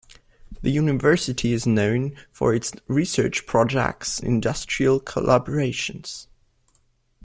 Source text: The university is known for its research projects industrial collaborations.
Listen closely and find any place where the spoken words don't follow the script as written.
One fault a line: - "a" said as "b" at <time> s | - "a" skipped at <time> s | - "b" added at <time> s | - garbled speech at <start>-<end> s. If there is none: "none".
none